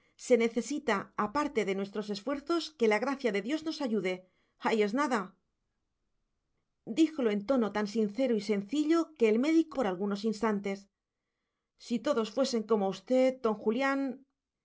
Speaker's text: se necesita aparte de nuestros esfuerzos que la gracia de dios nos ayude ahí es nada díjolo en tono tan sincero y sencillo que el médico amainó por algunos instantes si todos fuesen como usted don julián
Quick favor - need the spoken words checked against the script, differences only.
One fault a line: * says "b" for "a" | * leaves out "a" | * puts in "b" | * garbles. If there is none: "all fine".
* leaves out "amainó"